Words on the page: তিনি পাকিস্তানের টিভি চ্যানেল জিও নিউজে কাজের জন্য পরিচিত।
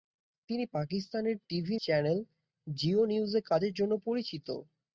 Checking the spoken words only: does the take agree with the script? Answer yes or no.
yes